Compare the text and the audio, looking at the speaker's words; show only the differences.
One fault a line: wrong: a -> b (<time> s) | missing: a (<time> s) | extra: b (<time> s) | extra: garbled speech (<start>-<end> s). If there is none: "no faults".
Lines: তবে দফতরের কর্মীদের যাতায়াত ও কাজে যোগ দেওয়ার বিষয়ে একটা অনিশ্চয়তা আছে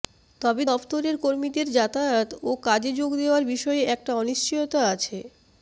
no faults